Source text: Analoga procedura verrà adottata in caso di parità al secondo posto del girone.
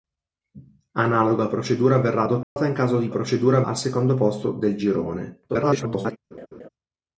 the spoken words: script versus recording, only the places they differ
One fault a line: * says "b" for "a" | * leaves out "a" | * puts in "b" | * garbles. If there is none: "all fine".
* says "procedura" for "parità"
* garbles